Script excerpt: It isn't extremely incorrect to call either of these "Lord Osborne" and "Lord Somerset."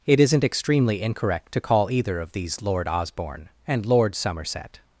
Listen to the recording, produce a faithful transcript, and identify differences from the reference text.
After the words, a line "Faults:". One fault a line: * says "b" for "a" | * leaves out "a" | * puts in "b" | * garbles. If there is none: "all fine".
It isn't extremely incorrect to call either of these "Lord Osborne" and "Lord Somerset."
Faults:
all fine